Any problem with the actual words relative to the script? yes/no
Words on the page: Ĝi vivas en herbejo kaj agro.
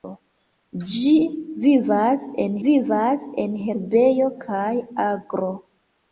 yes